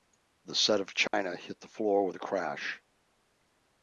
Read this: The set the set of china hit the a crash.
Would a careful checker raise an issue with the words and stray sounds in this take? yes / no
yes